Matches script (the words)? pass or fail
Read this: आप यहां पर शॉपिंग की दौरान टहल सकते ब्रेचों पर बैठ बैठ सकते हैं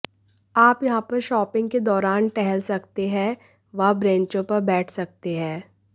fail